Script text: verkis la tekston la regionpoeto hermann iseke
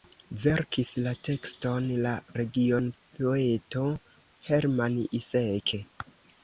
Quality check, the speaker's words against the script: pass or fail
pass